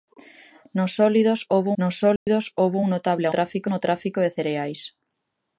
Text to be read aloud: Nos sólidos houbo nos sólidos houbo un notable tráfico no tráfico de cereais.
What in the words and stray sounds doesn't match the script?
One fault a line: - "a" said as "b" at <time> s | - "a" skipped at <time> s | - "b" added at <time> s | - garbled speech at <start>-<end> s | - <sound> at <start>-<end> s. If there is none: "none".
- dropout at 2.2-2.3 s